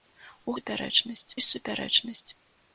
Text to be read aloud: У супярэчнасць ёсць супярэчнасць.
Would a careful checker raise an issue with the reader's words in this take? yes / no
no